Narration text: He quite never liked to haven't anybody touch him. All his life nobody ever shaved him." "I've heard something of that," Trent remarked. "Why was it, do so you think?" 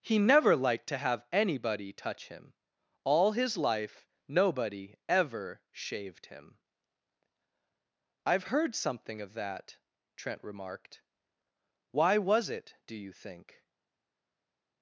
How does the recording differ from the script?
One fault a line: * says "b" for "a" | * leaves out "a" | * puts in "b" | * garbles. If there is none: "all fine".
* leaves out "quite"
* says "have" for "haven't"
* leaves out "so"